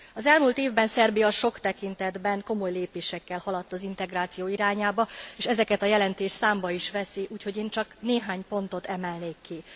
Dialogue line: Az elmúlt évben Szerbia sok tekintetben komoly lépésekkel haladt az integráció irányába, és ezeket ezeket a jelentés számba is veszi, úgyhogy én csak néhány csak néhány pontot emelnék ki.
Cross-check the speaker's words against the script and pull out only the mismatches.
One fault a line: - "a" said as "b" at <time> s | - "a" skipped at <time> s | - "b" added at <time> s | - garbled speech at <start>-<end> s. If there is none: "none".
- "ezeket" skipped at 5.8 s
- "csak néhány" skipped at 8.4 s